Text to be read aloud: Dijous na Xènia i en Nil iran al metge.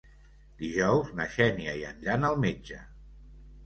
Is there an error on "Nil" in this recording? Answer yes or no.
yes